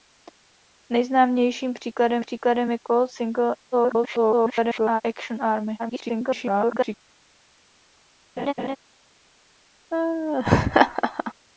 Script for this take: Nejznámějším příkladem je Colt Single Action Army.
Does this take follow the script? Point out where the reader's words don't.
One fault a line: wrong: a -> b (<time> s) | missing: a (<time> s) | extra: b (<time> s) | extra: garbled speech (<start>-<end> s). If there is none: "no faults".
extra: příkladem (2.2 s)
extra: garbled speech (3.7-5.0 s)
extra: garbled speech (5.8-7.0 s)